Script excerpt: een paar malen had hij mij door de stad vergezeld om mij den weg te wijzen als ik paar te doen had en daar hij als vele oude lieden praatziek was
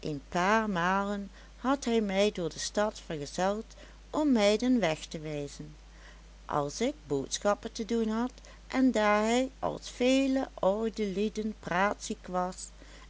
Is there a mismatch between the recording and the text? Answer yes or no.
yes